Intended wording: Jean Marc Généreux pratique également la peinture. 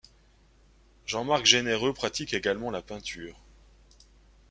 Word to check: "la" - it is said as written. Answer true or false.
true